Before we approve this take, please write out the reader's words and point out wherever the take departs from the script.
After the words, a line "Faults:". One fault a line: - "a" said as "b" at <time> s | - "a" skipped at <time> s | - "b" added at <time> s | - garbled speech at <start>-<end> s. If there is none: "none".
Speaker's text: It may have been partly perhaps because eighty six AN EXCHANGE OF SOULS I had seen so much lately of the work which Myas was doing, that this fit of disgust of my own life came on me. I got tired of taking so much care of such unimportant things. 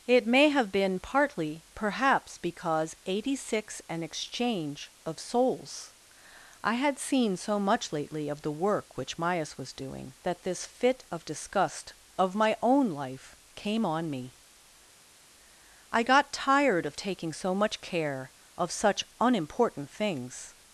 It may have been partly perhaps because eighty six AN EXCHANGE OF SOULS I had seen so much lately of the work which Myas was doing, that this fit of disgust of my own life came on me. I got tired of taking so much care of such unimportant things.
Faults:
none